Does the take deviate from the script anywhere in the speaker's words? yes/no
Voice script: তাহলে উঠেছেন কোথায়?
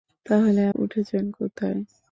no